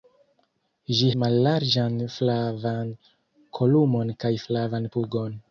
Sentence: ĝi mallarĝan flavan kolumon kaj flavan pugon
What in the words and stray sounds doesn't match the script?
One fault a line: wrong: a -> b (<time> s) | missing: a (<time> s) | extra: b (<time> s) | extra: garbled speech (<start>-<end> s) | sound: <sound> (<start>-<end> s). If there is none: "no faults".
no faults